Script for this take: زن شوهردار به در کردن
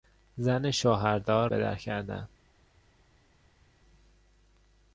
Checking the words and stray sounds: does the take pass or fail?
pass